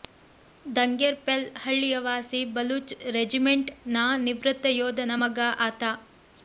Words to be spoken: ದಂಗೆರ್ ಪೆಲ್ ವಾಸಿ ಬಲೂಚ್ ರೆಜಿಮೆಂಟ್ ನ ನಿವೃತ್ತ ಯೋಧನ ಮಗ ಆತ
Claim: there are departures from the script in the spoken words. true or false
true